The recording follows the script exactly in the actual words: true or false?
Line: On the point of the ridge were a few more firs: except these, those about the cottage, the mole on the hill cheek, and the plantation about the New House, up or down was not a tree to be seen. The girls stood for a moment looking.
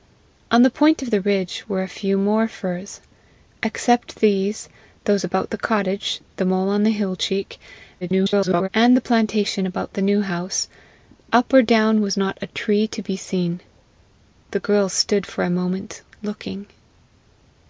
false